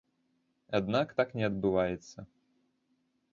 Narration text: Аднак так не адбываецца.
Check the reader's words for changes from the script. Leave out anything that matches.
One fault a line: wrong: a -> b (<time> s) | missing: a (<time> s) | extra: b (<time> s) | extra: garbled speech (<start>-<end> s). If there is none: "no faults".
no faults